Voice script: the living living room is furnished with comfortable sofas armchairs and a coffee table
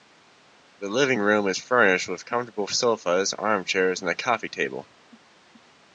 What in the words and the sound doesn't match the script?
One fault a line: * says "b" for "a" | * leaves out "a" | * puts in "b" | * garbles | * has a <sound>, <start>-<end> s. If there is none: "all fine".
* leaves out "living"